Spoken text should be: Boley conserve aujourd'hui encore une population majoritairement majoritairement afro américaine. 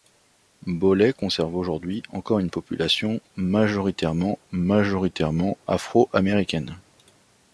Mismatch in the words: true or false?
false